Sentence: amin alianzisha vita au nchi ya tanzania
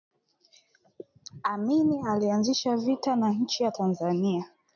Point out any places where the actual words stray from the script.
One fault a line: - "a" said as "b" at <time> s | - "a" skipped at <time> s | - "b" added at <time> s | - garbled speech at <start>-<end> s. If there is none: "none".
- "au" said as "na" at 3.1 s